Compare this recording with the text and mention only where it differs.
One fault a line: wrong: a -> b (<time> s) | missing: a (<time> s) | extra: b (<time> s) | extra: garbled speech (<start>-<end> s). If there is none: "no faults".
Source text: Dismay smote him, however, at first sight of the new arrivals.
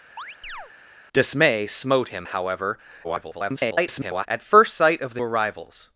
extra: garbled speech (3.0-4.3 s)
missing: new (5.2 s)